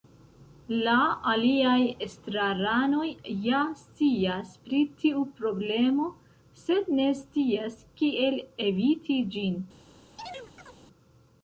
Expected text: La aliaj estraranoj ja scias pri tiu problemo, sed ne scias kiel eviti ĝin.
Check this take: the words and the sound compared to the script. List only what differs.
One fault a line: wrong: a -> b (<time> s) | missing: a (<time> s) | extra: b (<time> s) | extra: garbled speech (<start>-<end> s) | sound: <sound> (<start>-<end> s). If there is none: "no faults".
sound: chirp (10.2-10.8 s)